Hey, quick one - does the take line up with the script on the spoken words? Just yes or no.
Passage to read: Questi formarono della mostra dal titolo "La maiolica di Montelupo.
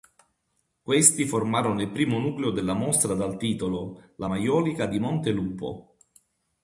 no